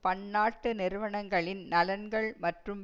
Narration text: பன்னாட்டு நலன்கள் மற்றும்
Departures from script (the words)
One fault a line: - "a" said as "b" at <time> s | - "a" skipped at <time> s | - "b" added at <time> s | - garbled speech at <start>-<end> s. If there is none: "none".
- "நிறுவனங்களின்" added at 0.7 s